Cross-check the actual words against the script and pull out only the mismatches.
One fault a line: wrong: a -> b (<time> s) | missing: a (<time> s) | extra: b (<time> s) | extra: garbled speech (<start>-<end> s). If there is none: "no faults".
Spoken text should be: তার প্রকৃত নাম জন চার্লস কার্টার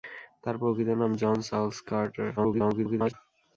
extra: garbled speech (2.4-3.1 s)